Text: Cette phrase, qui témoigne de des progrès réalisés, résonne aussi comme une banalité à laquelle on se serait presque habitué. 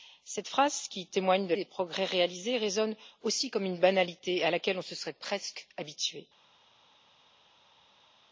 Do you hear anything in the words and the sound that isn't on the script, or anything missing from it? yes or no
no